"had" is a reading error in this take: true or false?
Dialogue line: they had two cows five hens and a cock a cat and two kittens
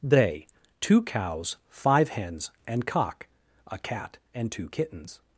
true